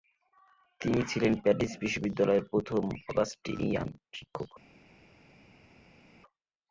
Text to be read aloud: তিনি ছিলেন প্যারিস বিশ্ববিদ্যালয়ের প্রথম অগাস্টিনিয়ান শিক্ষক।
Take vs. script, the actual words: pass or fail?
pass